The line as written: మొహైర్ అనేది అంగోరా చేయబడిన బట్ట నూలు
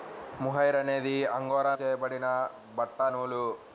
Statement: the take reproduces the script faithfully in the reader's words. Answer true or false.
true